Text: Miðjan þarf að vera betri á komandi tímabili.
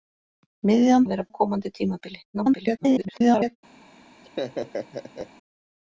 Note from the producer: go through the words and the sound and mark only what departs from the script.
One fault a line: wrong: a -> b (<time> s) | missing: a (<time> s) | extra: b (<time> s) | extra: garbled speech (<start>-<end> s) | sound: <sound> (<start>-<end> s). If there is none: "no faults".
missing: þarf (1.1 s)
missing: betri (1.3 s)
extra: garbled speech (2.3-3.6 s)
sound: laugh (4.2-5.3 s)